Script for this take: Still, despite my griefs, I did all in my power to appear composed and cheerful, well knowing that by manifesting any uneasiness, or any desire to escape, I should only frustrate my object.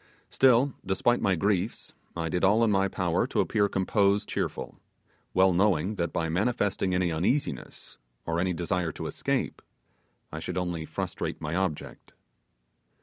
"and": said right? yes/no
no